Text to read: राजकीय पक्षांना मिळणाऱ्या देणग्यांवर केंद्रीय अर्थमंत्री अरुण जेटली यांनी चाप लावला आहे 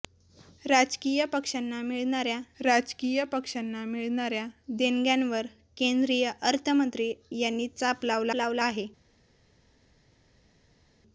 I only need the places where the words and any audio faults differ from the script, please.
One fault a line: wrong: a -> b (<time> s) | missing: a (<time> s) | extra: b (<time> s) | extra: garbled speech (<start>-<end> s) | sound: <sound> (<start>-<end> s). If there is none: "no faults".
extra: राजकीय पक्षांना मिळणाऱ्या (2.6 s)
missing: अरुण जेटली (7.1 s)
extra: लावला (8.3 s)